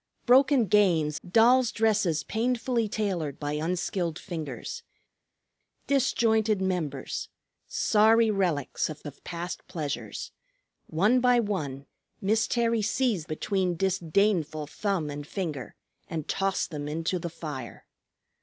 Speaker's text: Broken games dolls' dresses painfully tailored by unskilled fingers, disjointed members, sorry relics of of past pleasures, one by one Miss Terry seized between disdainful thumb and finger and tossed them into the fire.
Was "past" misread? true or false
false